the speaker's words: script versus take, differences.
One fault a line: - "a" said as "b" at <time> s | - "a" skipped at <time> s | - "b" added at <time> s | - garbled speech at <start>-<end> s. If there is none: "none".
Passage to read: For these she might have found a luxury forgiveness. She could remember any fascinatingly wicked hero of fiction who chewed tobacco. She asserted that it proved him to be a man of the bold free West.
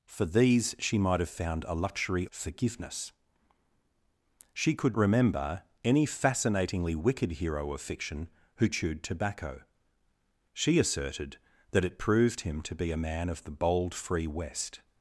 none